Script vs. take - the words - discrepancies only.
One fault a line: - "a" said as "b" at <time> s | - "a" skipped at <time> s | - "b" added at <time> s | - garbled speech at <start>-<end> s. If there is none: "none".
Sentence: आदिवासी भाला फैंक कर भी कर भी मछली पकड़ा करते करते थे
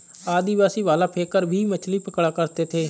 - "कर भी" skipped at 1.6 s
- "करते" skipped at 2.6 s